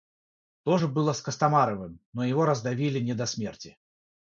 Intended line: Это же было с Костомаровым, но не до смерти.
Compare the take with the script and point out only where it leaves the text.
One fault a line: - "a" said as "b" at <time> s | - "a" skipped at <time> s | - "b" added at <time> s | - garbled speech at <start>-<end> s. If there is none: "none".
- "Это" said as "То" at 0.6 s
- "его раздавили" added at 2.2 s